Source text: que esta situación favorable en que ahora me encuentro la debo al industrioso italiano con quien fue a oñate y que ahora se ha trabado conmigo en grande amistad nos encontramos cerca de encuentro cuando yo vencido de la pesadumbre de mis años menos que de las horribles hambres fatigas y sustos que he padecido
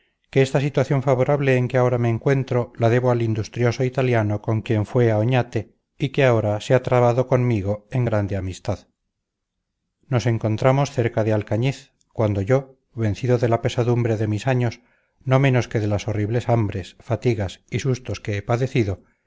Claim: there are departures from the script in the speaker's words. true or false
true